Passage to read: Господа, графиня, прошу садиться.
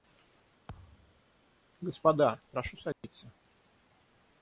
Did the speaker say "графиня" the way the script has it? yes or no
no